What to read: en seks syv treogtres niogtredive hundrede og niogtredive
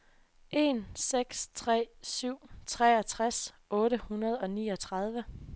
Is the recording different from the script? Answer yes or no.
yes